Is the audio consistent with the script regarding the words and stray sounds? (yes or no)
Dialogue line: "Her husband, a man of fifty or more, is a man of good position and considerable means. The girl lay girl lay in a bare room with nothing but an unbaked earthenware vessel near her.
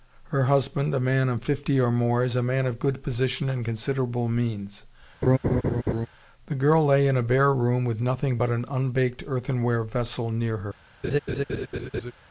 no